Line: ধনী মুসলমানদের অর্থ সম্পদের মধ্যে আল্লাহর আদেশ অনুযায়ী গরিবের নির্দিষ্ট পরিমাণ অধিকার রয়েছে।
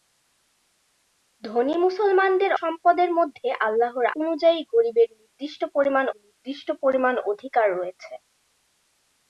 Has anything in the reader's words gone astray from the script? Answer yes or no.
yes